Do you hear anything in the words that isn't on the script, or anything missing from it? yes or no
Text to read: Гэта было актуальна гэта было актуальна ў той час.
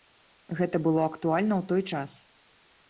yes